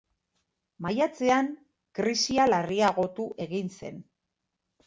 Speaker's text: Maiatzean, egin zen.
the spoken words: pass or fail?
fail